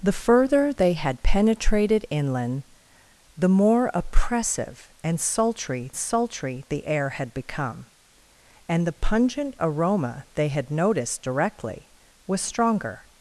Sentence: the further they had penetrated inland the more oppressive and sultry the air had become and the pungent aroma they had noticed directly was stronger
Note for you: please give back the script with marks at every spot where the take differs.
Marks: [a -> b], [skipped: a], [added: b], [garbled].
the further they had penetrated inland the more oppressive and sultry [added: sultry] the air had become and the pungent aroma they had noticed directly was stronger